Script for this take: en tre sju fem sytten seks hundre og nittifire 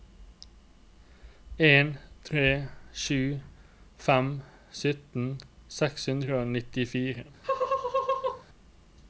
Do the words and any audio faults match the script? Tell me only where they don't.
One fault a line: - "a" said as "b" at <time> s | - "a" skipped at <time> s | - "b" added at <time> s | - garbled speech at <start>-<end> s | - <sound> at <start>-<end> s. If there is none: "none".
- laugh at 7.4-8.4 s